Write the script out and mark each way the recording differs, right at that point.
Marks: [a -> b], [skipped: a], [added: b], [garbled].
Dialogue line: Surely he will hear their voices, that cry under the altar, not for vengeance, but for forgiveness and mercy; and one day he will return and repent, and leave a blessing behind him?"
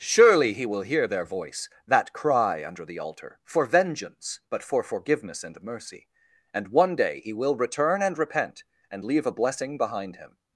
Surely he will hear their [voices, -> voice] that cry under the altar, [skipped: not] for vengeance, but for forgiveness and mercy; and one day he will return and repent, and leave a blessing behind him?"